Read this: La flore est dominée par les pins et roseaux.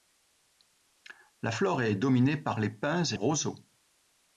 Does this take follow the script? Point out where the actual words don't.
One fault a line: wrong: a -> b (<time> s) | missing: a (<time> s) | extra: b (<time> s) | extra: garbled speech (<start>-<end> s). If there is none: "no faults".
no faults